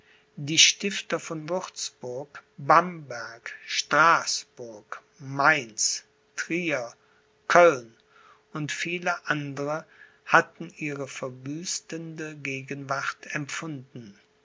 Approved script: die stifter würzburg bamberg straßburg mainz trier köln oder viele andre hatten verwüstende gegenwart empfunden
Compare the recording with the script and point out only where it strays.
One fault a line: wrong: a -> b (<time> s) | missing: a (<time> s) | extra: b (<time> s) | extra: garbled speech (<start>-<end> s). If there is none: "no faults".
extra: von (1.2 s)
wrong: oder -> und (8.5 s)
extra: ihre (10.8 s)